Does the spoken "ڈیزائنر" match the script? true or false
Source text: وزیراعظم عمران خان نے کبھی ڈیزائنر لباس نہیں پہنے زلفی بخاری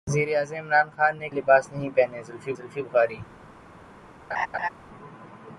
false